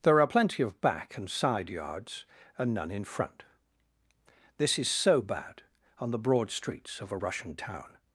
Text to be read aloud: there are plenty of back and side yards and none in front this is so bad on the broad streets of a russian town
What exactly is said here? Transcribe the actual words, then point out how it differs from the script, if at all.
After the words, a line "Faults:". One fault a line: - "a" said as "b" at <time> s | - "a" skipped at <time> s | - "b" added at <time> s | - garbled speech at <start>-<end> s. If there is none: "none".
there are plenty of back and side yards and none in front this is so bad on the broad streets of a russian town
Faults:
none